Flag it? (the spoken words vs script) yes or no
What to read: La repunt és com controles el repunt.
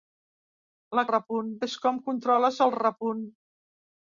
no